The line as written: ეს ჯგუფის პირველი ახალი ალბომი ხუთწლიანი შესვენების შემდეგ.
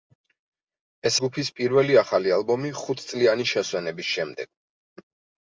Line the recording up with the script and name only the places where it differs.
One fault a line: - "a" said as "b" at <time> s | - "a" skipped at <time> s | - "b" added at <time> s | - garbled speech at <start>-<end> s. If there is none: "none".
none